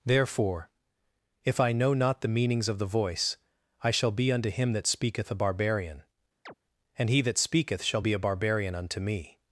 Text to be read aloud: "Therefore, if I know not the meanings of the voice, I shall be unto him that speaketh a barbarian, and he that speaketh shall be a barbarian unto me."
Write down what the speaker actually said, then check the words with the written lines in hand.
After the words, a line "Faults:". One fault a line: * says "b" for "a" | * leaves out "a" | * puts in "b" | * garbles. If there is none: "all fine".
"Therefore, if I know not the meanings of the voice, I shall be unto him that speaketh a barbarian, and he that speaketh shall be a barbarian unto me."
Faults:
all fine